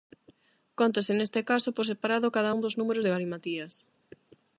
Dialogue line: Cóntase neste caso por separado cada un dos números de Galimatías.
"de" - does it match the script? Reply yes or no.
yes